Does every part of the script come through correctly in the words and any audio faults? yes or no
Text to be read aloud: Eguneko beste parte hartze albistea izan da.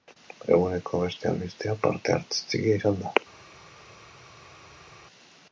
no